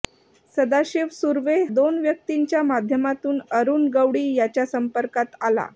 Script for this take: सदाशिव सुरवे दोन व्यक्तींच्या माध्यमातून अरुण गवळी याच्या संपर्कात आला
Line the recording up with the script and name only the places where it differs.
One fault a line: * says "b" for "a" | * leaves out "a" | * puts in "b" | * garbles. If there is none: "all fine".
all fine